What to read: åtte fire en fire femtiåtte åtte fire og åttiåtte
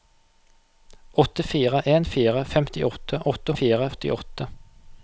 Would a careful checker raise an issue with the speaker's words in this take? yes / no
no